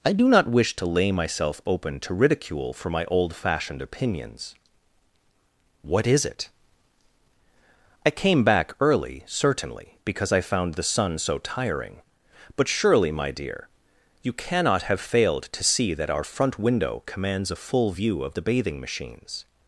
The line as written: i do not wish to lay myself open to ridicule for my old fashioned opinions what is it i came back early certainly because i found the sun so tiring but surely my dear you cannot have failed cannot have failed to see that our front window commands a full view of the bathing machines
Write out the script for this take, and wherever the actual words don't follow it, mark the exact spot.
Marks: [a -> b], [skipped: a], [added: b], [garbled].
i do not wish to lay myself open to ridicule for my old fashioned opinions what is it i came back early certainly because i found the sun so tiring but surely my dear you cannot have failed [skipped: cannot have failed] to see that our front window commands a full view of the bathing machines